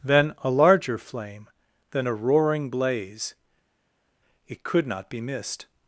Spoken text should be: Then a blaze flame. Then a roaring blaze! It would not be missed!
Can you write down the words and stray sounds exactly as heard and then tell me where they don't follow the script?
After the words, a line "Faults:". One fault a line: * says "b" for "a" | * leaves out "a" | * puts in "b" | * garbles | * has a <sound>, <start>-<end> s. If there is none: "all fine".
Then a larger flame. Then a roaring blaze! It could not be missed!
Faults:
* says "larger" for "blaze"
* says "could" for "would"